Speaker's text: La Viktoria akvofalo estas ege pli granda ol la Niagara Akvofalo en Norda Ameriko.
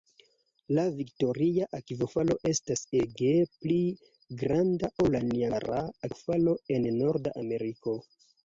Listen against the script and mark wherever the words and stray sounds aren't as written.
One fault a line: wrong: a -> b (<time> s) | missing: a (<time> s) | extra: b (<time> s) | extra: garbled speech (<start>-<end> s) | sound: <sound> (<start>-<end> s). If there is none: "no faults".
no faults